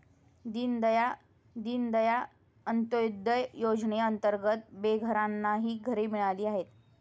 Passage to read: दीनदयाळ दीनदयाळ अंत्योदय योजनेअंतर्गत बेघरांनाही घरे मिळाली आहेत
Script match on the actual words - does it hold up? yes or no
yes